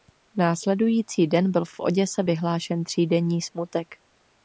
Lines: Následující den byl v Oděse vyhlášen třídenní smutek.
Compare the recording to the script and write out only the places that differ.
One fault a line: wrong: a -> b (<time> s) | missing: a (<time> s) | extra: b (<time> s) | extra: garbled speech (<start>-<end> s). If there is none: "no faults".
extra: v (1.7 s)